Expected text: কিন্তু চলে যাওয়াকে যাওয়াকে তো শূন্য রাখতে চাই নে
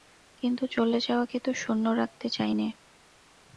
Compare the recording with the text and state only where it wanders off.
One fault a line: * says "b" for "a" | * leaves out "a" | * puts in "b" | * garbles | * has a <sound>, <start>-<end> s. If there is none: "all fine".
* leaves out "যাওয়াকে"